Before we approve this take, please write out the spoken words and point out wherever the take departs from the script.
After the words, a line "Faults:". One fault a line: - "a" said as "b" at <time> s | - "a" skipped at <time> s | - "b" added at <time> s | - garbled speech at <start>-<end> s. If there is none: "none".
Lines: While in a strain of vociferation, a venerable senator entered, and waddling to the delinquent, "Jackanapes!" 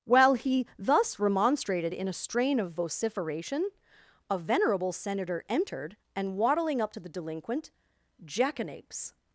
While he thus remonstrated in a strain of vociferation, a venerable senator entered, and waddling up to the delinquent, "Jackanapes!"
Faults:
- "he thus remonstrated" added at 0.3 s
- "up" added at 6.8 s